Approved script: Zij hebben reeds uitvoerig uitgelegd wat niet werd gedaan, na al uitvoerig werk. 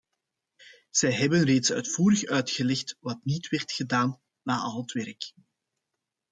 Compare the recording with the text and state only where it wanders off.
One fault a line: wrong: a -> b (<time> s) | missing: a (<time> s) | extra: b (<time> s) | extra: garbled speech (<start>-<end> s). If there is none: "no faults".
wrong: uitvoerig -> het (4.8 s)